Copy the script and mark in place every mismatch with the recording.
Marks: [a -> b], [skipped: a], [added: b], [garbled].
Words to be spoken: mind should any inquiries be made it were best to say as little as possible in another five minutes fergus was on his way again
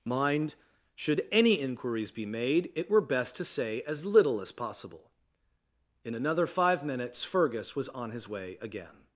mind should any inquiries be made it were best to say as little as possible in another five minutes fergus was on his way again